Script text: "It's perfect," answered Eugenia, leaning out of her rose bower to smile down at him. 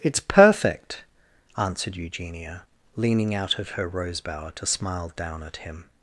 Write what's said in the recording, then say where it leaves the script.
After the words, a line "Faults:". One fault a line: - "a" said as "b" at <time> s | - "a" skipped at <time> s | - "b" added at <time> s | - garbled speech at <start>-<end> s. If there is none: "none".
"It's perfect," answered Eugenia, leaning out of her rose bower to smile down at him.
Faults:
none